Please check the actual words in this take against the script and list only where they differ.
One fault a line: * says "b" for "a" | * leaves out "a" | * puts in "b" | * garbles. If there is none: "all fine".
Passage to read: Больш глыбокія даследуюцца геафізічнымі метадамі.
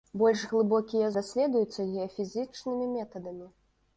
all fine